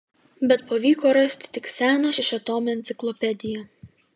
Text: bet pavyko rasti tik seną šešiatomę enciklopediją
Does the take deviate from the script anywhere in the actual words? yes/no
no